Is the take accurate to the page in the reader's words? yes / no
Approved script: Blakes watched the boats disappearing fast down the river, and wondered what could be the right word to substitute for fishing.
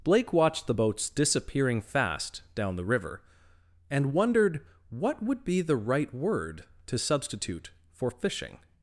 no